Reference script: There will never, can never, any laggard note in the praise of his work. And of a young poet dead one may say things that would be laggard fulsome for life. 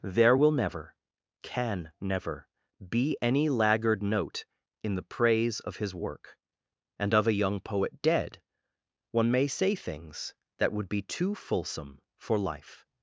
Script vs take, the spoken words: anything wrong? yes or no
yes